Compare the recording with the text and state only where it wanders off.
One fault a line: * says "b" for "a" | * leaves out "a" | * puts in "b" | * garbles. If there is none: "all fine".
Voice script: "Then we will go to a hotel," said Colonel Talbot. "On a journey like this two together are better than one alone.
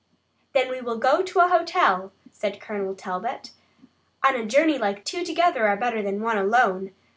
* leaves out "this"